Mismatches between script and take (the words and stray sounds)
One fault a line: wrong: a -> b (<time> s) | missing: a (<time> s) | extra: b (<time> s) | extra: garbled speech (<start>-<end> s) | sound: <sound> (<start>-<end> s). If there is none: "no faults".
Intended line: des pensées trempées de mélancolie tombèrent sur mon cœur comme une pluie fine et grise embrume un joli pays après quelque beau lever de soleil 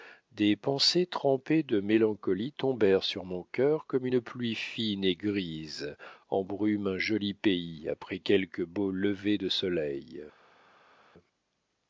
no faults